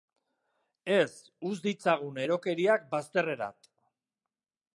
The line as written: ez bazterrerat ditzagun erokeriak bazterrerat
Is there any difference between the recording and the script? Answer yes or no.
yes